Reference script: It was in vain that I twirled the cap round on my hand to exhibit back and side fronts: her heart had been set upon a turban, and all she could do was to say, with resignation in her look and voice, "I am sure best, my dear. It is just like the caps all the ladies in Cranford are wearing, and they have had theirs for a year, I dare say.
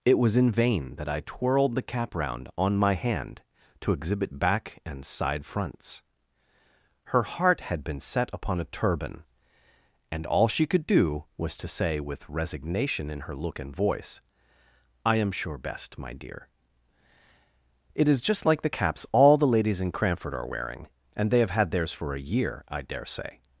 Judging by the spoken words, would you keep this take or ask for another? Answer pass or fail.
pass